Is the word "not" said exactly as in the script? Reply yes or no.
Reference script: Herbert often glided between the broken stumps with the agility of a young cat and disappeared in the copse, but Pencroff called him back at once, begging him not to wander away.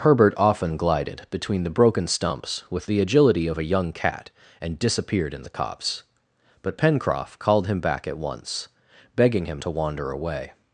no